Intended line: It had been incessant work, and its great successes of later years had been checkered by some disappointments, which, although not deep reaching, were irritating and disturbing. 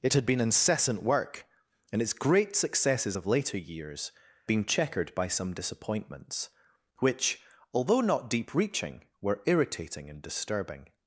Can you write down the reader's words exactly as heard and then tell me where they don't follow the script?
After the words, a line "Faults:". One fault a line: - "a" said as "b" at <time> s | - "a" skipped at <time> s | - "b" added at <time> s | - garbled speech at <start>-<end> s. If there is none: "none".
It had been incessant work, and its great successes of later years been checkered by some disappointments, which, although not deep reaching, were irritating and disturbing.
Faults:
- "had" skipped at 4.1 s